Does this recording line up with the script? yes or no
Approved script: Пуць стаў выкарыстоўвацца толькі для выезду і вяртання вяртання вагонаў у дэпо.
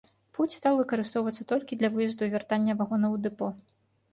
no